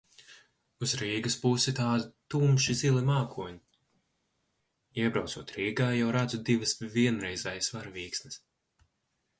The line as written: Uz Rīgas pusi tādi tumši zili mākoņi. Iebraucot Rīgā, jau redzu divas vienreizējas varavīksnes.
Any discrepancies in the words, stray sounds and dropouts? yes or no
no